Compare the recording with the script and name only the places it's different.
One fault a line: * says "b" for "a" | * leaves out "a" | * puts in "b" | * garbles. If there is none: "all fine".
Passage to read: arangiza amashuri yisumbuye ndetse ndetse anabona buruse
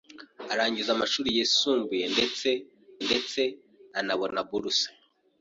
all fine